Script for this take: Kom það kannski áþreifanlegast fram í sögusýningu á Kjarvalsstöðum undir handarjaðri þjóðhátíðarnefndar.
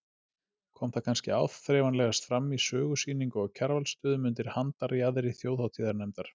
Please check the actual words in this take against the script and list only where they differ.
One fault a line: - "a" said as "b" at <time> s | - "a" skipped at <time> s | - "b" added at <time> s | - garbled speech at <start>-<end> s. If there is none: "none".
none